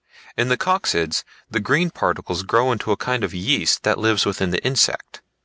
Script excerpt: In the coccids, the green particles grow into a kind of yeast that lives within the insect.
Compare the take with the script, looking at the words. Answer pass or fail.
pass